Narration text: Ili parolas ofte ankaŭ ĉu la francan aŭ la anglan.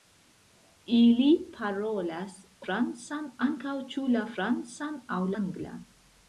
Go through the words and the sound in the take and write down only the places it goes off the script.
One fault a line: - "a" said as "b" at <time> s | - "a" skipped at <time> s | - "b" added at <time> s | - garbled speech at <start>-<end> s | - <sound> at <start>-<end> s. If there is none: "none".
- "ofte" said as "francan" at 2.7 s
- "la" skipped at 5.2 s